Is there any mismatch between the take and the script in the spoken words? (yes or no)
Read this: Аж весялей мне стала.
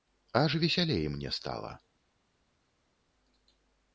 no